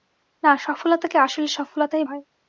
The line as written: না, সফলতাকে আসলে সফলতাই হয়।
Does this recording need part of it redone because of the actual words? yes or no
no